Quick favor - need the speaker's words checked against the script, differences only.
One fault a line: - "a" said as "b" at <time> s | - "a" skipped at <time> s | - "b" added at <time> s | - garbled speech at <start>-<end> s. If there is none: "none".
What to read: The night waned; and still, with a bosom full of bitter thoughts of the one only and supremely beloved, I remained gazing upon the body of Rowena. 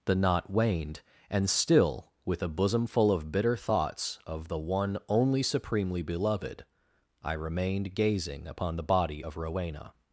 - "night" said as "knot" at 0.1 s
- "and" skipped at 5.4 s